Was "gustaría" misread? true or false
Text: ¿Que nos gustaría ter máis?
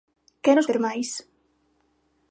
true